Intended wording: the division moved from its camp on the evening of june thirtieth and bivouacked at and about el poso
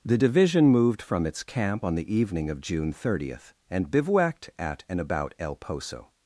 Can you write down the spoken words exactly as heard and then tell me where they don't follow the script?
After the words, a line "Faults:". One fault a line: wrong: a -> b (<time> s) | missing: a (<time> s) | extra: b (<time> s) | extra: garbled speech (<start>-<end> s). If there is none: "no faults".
the division moved from its camp on the evening of june thirtieth and bivouacked at and about el poso
Faults:
no faults